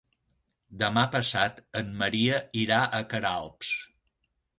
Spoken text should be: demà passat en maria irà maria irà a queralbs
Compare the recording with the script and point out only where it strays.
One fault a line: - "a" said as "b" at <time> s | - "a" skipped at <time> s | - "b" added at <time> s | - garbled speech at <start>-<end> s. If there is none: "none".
- "maria irà" skipped at 2.8 s